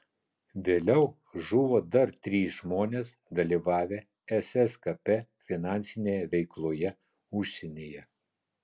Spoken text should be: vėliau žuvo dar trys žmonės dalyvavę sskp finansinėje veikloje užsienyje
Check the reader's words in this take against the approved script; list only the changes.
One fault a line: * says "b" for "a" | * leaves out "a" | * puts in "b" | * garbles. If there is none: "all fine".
all fine